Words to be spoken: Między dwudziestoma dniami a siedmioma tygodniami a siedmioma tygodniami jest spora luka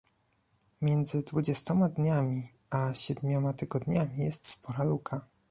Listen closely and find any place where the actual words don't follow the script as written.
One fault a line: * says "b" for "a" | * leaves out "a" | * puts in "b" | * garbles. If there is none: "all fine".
* leaves out "a siedmioma tygodniami"